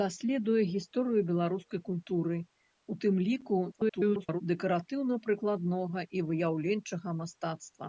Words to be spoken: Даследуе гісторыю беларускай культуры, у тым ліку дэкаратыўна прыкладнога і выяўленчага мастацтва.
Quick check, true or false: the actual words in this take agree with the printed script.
false